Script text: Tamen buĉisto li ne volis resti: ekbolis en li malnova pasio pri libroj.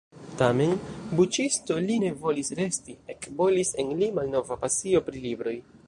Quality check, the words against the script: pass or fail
pass